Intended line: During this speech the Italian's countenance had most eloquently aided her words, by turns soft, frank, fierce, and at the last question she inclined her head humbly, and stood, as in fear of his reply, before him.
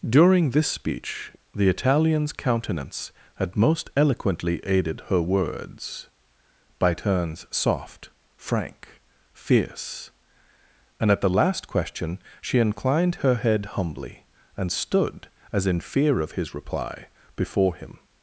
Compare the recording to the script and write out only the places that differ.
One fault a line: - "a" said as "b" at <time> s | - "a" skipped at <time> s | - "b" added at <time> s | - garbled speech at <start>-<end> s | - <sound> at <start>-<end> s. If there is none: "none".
none